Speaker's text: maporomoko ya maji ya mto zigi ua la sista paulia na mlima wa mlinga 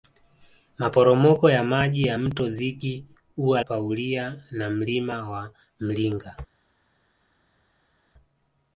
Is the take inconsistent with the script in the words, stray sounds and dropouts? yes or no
yes